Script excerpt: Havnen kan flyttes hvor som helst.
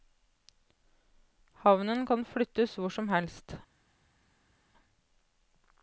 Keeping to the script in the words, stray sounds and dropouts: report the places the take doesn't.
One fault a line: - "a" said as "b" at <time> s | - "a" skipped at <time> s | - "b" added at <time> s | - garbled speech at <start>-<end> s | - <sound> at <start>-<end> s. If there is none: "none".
none